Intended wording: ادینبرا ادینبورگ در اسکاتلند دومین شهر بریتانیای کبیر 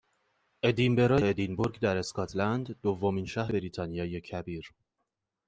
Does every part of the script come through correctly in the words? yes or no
yes